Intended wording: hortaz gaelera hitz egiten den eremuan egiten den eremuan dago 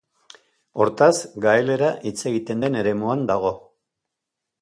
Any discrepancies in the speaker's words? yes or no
yes